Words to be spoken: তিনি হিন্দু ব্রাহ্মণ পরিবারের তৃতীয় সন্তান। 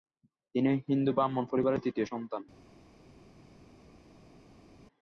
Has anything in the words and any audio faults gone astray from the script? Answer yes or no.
no